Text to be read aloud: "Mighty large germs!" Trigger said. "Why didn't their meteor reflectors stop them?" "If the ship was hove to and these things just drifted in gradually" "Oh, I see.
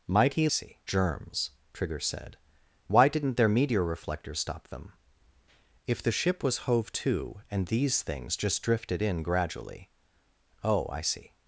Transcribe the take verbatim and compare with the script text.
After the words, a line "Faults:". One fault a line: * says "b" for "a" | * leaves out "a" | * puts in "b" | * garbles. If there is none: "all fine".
"Mighty see germs!" Trigger said. "Why didn't their meteor reflectors stop them?" "If the ship was hove to and these things just drifted in gradually" "Oh, I see.
Faults:
* says "see" for "large"